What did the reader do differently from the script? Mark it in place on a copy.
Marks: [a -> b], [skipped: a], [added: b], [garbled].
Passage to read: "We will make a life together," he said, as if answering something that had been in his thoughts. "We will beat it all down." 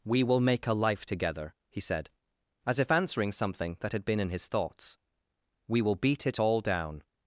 "We will make a life together," he said, as if answering something that had been in his thoughts. "We will beat it all down."